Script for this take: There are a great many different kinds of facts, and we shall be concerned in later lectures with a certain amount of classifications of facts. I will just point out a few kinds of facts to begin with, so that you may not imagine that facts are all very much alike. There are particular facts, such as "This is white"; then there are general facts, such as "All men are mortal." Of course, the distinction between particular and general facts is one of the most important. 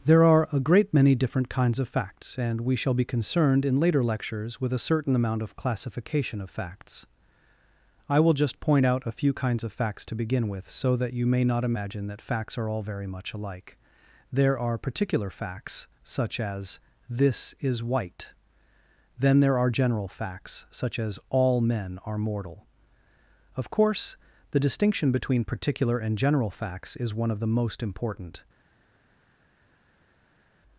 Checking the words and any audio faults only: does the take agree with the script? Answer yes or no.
no